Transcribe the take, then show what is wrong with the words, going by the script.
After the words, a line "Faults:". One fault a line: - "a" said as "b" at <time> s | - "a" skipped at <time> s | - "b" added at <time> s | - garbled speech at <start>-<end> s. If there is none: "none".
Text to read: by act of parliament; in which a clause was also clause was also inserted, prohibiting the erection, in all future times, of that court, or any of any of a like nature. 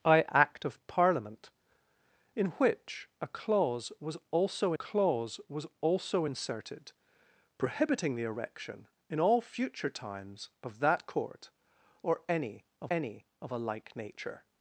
by act of parliament; in which a clause was also clause was also inserted, prohibiting the erection, in all future times, of that court, or any of any of a like nature.
Faults:
none